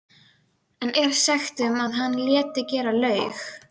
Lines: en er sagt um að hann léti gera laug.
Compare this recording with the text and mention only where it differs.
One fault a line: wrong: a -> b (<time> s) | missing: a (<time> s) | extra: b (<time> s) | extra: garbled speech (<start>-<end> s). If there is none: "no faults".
no faults